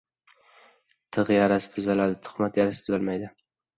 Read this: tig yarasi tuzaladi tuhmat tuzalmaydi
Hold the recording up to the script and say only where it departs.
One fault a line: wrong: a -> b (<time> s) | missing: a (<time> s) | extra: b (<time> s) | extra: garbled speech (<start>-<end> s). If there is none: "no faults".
extra: yarasi (2.6 s)